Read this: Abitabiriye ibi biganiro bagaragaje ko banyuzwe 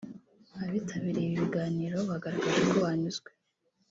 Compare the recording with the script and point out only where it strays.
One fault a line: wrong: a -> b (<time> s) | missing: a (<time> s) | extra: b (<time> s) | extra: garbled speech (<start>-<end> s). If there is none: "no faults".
no faults